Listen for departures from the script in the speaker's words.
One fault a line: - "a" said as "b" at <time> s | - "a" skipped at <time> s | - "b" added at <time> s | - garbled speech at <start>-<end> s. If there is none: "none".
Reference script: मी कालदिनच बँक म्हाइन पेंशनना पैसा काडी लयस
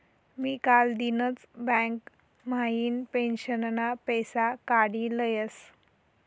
none